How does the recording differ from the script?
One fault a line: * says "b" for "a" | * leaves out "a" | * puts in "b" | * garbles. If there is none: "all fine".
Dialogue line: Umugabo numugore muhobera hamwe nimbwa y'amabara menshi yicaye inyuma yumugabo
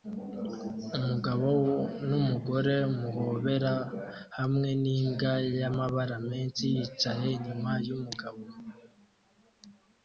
all fine